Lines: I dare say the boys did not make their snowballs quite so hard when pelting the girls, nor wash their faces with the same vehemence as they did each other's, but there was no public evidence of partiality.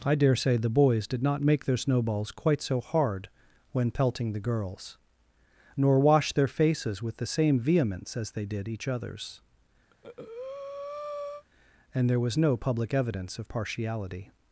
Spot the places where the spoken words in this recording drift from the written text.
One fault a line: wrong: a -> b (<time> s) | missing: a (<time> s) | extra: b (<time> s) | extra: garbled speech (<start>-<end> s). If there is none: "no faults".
wrong: but -> and (11.9 s)